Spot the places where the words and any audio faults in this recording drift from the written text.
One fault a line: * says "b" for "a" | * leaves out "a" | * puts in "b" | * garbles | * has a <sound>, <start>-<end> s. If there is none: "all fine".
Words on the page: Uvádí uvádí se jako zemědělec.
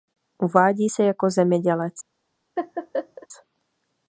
* leaves out "uvádí"
* has a laugh, 2.6-3.3 s